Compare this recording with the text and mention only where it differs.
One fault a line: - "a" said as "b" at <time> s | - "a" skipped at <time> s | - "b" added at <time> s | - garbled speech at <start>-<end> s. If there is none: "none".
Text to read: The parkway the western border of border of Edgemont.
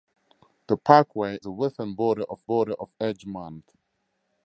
none